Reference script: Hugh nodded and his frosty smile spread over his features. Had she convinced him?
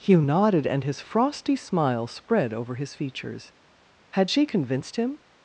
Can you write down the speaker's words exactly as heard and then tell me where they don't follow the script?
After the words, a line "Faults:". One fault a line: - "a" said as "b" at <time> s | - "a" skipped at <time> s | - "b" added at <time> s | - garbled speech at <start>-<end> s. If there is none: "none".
Hugh nodded and his frosty smile spread over his features. Had she convinced him?
Faults:
none